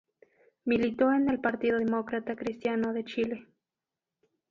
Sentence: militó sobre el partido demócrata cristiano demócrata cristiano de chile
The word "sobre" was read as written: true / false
false